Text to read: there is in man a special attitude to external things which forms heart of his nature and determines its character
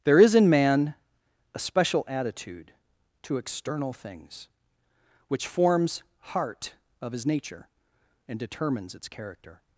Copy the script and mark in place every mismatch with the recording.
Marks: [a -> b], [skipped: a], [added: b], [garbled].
there is in man a special attitude to external things which forms heart of his nature and determines its character